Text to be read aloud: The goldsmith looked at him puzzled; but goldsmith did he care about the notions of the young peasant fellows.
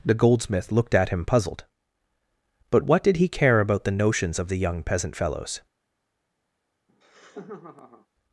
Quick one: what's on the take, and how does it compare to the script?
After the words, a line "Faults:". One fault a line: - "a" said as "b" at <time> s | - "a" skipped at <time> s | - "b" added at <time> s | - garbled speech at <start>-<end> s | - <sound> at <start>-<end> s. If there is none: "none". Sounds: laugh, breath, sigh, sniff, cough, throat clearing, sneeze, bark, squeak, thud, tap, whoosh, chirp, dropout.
The goldsmith looked at him puzzled; but what did he care about the notions of the young peasant fellows.
Faults:
- "goldsmith" said as "what" at 2.8 s
- laugh at 6.9-8.1 s